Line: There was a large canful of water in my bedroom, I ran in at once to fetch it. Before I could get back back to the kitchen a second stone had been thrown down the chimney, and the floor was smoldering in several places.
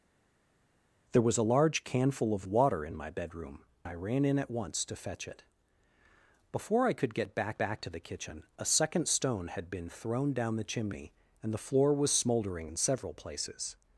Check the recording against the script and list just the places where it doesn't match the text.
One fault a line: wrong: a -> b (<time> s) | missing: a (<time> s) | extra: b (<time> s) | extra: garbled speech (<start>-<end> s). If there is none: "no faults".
no faults